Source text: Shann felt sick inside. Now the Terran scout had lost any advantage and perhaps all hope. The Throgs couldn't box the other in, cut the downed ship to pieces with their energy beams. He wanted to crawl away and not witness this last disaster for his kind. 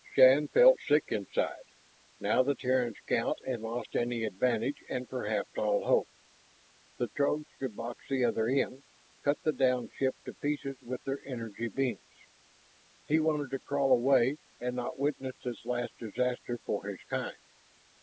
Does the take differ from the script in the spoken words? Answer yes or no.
yes